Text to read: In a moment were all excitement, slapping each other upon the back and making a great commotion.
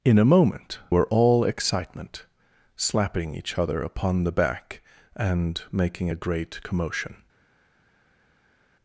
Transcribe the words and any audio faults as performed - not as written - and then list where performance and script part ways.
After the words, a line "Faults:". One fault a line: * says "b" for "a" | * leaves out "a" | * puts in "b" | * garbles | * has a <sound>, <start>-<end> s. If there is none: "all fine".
In a moment were all excitement, slapping each other upon the back and making a great commotion.
Faults:
all fine